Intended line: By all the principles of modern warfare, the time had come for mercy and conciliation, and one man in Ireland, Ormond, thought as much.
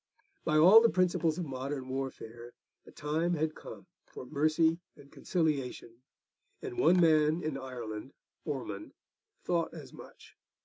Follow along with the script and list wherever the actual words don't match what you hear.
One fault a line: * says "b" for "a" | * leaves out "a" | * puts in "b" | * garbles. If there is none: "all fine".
all fine